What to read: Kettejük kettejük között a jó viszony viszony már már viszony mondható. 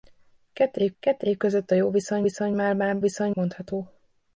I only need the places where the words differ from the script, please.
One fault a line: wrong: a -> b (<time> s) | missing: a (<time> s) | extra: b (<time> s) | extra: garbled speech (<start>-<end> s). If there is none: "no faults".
no faults